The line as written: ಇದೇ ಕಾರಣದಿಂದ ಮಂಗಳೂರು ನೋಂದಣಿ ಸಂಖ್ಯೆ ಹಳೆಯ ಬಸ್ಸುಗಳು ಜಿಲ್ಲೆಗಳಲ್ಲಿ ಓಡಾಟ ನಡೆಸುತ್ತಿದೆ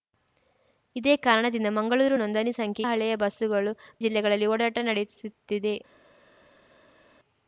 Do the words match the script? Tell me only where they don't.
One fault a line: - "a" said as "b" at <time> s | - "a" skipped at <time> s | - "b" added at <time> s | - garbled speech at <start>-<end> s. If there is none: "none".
none